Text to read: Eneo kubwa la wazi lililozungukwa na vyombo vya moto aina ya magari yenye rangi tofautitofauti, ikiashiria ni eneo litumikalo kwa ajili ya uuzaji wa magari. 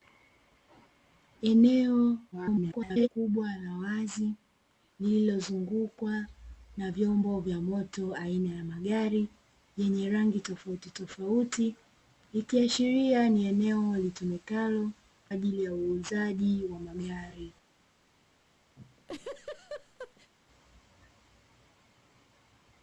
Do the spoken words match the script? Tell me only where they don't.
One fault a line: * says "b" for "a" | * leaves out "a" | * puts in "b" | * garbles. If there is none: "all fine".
* garbles
* leaves out "kwa"